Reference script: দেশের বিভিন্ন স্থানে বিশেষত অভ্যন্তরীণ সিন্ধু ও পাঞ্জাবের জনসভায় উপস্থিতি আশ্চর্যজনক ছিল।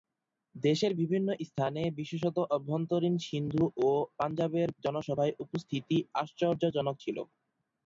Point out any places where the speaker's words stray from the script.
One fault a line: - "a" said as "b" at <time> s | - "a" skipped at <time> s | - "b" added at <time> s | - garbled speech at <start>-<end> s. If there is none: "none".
none